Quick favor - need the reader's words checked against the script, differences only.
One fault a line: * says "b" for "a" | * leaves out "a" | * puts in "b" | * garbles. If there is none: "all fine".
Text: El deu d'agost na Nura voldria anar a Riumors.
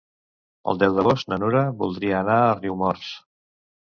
all fine